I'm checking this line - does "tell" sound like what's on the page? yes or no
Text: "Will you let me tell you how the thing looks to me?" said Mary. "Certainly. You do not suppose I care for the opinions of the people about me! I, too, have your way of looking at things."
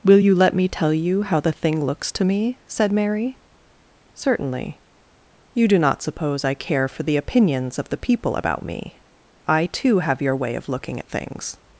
yes